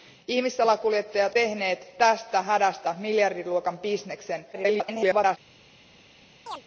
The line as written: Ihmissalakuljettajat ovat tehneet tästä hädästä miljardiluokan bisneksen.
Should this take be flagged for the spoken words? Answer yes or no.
yes